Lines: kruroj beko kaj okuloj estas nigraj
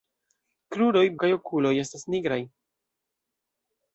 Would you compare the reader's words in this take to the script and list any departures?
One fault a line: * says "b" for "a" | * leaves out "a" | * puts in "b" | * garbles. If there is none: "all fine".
* leaves out "beko"